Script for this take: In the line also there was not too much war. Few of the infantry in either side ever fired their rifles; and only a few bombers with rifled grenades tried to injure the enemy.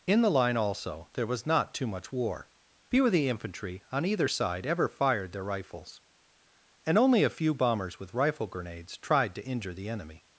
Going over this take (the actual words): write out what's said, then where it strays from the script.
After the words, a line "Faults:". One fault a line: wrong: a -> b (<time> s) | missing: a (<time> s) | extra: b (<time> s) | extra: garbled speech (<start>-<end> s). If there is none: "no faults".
In the line also there was not too much war. Few of the infantry on either side ever fired their rifles; and only a few bombers with rifle grenades tried to injure the enemy.
Faults:
wrong: in -> on (3.9 s)
wrong: rifled -> rifle (8.1 s)